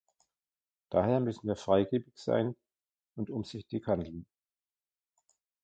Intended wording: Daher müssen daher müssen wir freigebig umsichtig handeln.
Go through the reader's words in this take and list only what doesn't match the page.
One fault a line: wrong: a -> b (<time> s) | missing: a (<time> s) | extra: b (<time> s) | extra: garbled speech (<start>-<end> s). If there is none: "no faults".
wrong: daher müssen wir freigebig -> wir freigebig sein und (1.5 s)